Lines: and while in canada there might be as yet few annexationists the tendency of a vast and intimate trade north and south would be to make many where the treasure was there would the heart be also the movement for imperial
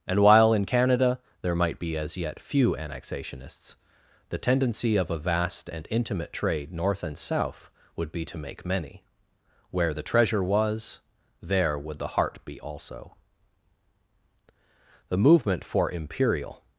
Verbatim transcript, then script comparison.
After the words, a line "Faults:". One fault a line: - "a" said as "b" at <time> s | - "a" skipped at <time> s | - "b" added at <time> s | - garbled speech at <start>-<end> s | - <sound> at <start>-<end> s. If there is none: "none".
and while in canada there might be as yet few annexationists the tendency of a vast and intimate trade north and south would be to make many where the treasure was there would the heart be also the movement for imperial
Faults:
none